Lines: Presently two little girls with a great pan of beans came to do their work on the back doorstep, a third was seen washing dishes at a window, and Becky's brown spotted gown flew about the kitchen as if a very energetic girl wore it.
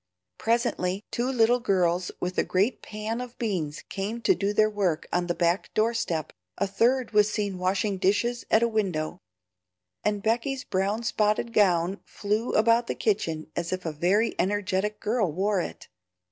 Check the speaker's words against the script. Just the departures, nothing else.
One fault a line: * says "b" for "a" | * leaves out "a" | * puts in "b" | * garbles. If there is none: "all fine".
all fine